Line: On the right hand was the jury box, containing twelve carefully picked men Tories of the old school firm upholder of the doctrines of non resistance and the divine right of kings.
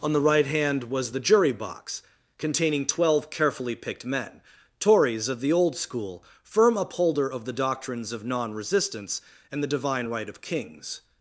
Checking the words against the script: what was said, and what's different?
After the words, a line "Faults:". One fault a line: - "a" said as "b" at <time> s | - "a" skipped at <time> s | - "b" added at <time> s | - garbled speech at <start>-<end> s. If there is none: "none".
On the right hand was the jury box, containing twelve carefully picked men Tories of the old school firm upholder of the doctrines of non resistance and the divine right of kings.
Faults:
none